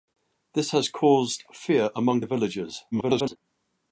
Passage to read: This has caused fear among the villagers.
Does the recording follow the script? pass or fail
fail